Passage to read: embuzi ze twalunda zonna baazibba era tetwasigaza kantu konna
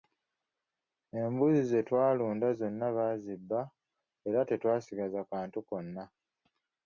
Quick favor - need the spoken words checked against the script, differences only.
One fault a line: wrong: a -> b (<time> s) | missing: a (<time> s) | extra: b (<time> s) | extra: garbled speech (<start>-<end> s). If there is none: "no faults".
no faults